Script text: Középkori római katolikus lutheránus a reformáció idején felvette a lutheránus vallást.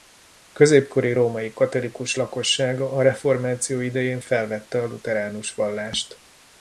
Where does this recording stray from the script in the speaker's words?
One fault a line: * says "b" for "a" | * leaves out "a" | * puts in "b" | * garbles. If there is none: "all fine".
* says "lakossága" for "lutheránus"